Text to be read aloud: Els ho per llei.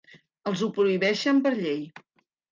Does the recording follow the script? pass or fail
fail